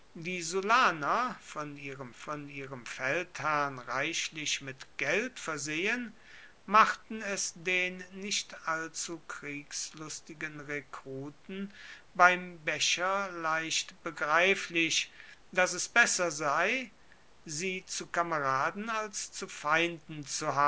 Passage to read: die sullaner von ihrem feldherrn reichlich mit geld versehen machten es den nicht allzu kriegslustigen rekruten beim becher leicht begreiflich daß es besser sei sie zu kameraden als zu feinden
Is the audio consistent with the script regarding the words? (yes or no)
no